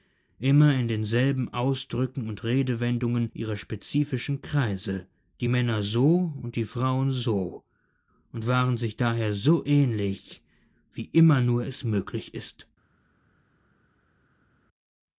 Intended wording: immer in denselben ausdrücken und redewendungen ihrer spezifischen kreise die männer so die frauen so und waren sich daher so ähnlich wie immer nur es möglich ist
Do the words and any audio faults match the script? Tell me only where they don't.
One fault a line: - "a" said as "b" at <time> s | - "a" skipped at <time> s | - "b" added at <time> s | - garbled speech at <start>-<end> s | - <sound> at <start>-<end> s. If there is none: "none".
- "und" added at 6.4 s